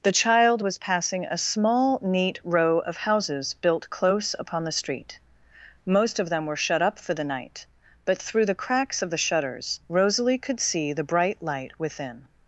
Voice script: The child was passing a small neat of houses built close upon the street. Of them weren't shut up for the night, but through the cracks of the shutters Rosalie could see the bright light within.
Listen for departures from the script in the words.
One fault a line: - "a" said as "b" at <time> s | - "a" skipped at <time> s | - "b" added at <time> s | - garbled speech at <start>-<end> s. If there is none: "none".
- "row" added at 2.4 s
- "Most" added at 5.8 s
- "weren't" said as "were" at 6.4 s